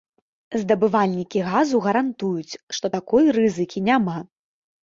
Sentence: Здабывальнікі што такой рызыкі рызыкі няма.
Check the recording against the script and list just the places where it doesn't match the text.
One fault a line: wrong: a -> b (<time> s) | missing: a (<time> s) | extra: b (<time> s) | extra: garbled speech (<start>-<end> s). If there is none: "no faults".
extra: газу гарантуюць (1.5 s)
missing: рызыкі (3.8 s)